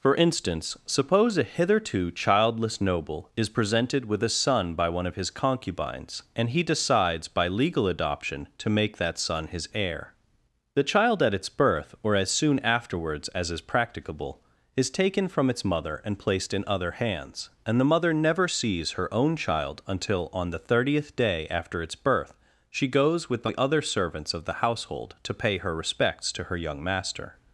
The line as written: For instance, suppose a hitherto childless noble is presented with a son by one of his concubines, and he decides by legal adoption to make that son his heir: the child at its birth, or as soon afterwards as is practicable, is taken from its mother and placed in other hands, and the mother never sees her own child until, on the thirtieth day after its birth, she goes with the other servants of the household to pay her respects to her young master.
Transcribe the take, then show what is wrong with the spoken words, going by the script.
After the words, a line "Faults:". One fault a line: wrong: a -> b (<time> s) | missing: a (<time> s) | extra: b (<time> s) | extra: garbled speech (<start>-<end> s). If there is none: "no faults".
For instance, suppose a hitherto childless noble is presented with a son by one of his concubines, and he decides by legal adoption to make that son his heir: the child at its birth, or as soon afterwards as is practicable, is taken from its mother and placed in other hands, and the mother never sees her own child until, on the thirtieth day after its birth, she goes with the other servants of the household to pay her respects to her young master.
Faults:
no faults